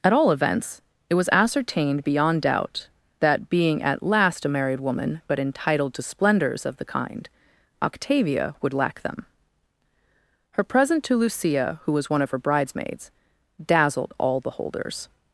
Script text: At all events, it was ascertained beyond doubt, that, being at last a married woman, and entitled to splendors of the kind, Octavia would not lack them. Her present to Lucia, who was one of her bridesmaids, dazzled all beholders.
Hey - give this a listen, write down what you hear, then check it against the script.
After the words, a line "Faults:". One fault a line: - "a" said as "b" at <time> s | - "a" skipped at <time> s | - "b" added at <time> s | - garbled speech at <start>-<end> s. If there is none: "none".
At all events, it was ascertained beyond doubt, that, being at last a married woman, but entitled to splendors of the kind, Octavia would lack them. Her present to Lucia, who was one of her bridesmaids, dazzled all beholders.
Faults:
- "and" said as "but" at 5.3 s
- "not" skipped at 8.7 s